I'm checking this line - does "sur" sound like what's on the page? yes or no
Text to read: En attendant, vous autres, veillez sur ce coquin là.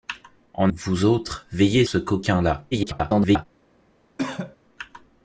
no